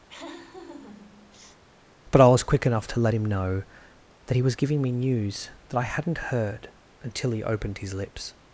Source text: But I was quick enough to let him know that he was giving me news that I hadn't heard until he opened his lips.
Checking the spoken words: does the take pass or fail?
pass